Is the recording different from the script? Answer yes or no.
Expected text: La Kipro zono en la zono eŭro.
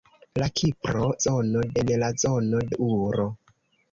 no